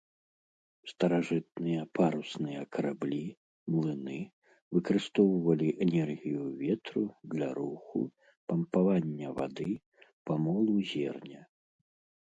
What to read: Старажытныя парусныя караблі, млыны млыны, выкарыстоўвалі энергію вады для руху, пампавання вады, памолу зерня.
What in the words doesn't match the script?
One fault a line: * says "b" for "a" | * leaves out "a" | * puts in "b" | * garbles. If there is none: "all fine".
* leaves out "млыны"
* says "ветру" for "вады"